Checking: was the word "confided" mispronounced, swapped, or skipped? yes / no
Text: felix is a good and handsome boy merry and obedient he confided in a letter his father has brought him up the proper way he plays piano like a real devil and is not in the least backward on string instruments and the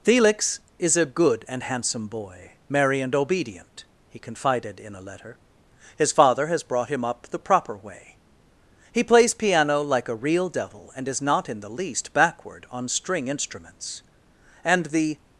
no